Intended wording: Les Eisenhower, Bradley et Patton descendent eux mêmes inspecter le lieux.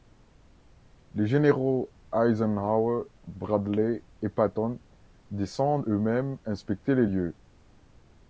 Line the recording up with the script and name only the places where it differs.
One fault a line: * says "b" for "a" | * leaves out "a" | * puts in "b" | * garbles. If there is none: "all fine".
* puts in "généraux"
* says "les" for "le"